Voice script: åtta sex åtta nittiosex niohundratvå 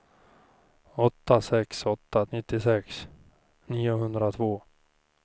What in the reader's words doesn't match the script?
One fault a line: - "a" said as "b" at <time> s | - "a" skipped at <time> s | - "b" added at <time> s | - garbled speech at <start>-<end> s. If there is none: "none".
none